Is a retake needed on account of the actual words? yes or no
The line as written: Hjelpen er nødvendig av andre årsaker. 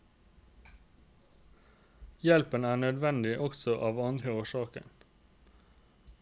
yes